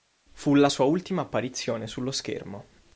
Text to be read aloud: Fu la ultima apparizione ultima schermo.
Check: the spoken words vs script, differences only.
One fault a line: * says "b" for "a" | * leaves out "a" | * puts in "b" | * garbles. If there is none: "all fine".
* puts in "sua"
* says "sullo" for "ultima"